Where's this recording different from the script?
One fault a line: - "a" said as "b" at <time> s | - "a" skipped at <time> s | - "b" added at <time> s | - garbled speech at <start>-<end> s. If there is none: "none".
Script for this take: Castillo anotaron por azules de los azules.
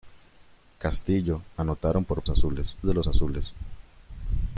none